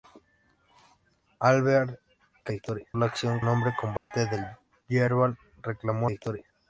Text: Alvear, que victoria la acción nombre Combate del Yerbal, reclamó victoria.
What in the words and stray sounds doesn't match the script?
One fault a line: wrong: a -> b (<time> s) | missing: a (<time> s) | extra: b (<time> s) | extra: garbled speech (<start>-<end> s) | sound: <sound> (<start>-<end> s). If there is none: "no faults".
sound: dropout (4.0-4.1 s)